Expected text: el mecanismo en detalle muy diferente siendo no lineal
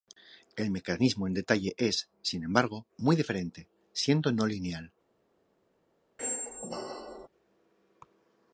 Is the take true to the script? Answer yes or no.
no